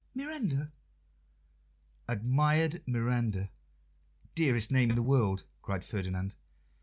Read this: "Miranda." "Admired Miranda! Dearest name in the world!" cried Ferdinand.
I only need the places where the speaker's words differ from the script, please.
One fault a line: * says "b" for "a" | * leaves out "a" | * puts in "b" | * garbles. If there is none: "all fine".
all fine